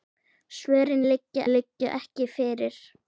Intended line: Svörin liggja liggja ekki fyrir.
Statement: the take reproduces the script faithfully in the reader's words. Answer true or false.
true